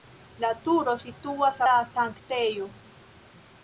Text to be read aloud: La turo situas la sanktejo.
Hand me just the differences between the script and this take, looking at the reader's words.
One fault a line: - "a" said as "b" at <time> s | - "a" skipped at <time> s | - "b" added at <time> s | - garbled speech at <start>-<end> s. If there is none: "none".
none